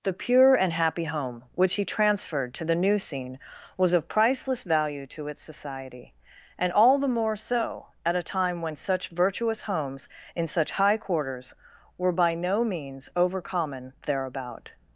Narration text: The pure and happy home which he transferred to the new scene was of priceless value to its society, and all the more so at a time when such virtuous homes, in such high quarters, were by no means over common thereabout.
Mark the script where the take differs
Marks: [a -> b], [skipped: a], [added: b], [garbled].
The pure and happy home which he transferred to the new scene was of priceless value to its society, and all the more so at a time when such virtuous homes, in such high quarters, were by no means over common thereabout.